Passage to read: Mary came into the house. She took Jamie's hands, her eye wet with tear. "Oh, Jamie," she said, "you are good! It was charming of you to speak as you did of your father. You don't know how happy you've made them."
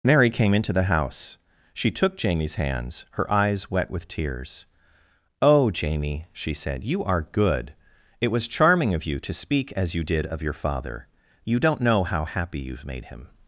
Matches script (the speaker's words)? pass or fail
fail